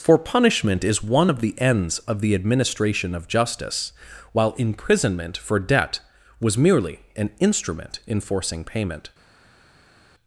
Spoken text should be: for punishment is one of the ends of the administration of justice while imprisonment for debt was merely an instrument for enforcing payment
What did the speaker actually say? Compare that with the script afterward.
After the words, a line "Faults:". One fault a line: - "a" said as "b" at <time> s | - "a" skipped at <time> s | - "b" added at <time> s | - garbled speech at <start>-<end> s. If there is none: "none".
for punishment is one of the ends of the administration of justice while imprisonment for debt was merely an instrument enforcing payment
Faults:
- "for" skipped at 8.0 s